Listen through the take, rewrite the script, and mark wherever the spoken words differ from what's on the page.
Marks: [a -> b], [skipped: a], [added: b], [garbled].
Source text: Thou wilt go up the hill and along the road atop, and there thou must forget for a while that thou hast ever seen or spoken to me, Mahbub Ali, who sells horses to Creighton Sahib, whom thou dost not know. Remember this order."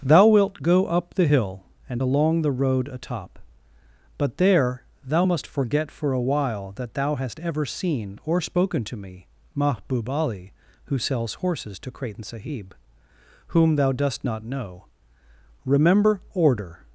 Thou wilt go up the hill and along the road atop, [and -> but] there thou must forget for a while that thou hast ever seen or spoken to me, Mahbub Ali, who sells horses to Creighton Sahib, whom thou dost not know. Remember [skipped: this] order."